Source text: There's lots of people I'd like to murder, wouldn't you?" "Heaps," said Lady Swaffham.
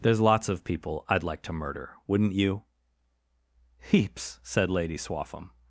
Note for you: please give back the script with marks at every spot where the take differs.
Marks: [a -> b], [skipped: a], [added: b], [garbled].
There's lots of people I'd like to murder, wouldn't you?" "Heaps," said Lady Swaffham.